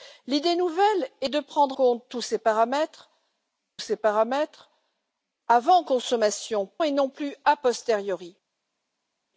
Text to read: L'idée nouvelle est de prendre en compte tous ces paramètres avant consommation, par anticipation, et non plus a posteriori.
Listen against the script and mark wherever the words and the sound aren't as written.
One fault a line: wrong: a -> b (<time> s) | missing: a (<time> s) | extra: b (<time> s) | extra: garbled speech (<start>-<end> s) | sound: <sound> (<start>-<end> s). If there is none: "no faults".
missing: en (1.8 s)
extra: ces paramètres (3.8 s)
missing: par anticipation (6.7 s)